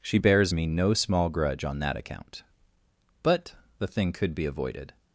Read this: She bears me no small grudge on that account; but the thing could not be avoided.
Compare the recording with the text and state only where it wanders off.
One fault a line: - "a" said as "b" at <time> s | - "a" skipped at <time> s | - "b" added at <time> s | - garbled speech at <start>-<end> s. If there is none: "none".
- "not" skipped at 4.3 s